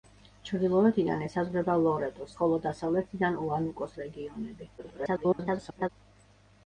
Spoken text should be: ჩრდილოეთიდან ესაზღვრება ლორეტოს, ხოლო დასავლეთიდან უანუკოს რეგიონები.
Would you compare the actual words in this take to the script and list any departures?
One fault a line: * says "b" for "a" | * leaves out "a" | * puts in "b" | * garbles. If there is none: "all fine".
* garbles